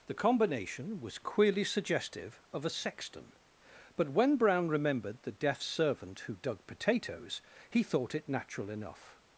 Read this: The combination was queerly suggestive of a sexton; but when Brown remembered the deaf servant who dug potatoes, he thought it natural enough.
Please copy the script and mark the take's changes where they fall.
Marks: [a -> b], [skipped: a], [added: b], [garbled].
The combination was queerly suggestive of a sexton; but when Brown remembered the deaf servant who dug potatoes, he thought it natural enough.